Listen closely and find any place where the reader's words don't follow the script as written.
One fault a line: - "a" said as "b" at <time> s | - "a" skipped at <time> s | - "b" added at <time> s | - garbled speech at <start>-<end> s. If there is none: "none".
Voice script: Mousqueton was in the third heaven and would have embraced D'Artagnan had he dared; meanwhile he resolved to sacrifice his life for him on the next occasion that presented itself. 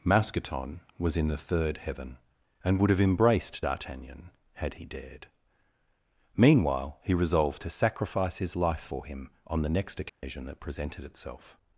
none